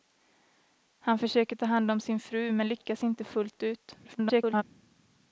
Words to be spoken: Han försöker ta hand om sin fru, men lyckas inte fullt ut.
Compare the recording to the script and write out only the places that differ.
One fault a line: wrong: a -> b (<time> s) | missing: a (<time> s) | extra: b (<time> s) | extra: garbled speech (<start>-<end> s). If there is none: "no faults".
extra: garbled speech (4.0-4.6 s)